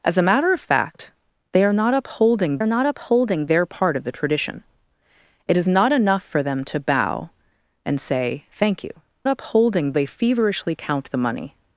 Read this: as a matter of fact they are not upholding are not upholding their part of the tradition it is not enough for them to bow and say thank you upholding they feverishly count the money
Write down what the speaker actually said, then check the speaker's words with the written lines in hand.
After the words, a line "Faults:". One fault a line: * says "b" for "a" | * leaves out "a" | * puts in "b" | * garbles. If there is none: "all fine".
as a matter of fact they are not upholding are not upholding their part of the tradition it is not enough for them to bow and say thank you upholding they feverishly count the money
Faults:
all fine